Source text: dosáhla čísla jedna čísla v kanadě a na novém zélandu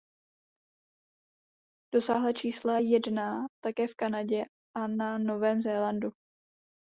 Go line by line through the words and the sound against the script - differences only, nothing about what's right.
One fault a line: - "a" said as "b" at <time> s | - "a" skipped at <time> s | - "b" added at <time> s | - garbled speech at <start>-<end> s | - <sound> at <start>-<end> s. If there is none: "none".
- "čísla" said as "také" at 3.6 s